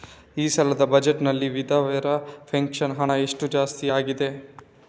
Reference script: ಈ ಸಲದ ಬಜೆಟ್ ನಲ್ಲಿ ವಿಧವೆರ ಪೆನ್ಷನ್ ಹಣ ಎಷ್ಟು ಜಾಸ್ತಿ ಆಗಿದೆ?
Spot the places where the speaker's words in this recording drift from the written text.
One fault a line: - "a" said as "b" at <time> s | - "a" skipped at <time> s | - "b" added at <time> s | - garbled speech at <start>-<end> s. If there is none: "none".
none